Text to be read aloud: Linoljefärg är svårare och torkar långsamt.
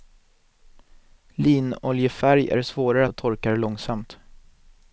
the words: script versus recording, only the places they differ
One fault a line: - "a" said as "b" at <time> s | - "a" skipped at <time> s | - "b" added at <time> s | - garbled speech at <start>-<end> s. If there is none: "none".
none